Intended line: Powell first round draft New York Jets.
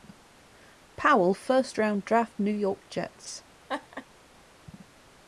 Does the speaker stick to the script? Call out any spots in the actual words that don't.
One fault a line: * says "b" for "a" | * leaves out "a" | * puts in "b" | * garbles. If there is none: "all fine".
all fine